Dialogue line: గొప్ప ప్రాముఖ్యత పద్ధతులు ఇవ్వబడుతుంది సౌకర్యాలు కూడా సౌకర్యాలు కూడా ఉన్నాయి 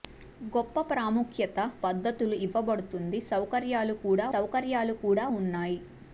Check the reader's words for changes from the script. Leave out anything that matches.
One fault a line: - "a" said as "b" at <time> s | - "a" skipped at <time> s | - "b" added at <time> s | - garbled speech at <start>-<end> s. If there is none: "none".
none